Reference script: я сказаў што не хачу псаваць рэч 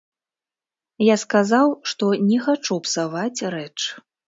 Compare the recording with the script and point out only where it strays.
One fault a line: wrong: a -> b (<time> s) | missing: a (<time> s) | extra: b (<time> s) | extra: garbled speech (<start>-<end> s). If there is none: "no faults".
no faults